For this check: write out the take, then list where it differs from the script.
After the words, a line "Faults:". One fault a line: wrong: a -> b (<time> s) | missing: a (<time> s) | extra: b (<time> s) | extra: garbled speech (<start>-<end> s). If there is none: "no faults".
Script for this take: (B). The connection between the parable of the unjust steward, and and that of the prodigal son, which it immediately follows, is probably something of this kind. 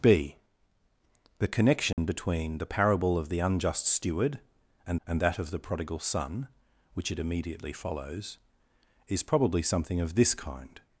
(B). The connection between the parable of the unjust steward, and and that of the prodigal son, which it immediately follows, is probably something of this kind.
Faults:
no faults